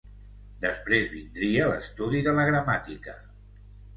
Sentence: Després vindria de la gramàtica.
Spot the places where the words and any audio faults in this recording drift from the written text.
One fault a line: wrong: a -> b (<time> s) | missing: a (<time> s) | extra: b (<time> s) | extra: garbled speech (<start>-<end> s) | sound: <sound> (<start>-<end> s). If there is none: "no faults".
extra: l'estudi (1.7 s)